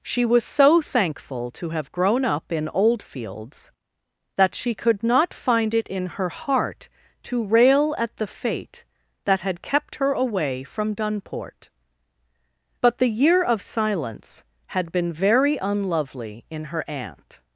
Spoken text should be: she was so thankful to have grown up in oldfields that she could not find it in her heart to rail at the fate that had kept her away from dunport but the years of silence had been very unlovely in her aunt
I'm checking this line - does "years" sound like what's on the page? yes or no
no